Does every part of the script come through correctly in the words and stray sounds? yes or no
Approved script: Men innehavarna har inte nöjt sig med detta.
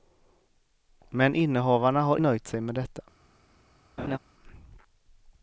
no